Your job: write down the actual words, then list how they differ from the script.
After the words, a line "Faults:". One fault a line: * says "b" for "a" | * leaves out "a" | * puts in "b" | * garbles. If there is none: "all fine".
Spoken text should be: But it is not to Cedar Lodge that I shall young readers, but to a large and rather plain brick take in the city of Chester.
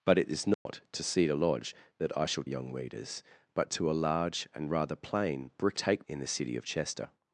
But it is not to Cedar Lodge that I shall young readers, but to a large and rather plain brick take in the city of Chester.
Faults:
all fine